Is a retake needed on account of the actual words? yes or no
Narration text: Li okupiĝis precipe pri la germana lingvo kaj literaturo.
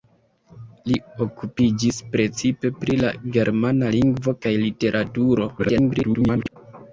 yes